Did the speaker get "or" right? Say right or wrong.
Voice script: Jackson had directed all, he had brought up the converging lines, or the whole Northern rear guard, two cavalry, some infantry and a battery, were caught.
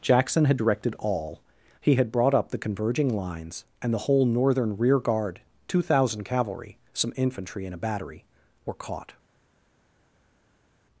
wrong